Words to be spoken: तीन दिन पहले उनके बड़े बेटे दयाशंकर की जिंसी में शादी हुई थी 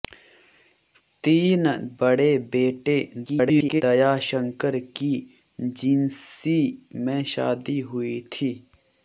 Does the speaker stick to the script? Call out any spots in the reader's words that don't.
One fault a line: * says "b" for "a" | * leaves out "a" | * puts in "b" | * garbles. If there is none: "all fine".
* leaves out "दिन पहले उनके"
* garbles